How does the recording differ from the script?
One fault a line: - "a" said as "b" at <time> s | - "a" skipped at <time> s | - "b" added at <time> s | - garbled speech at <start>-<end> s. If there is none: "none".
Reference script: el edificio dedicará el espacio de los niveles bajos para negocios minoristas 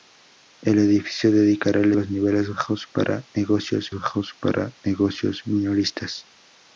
- "espacio de los niveles" said as "los niveles bajos para negocios" at 1.9 s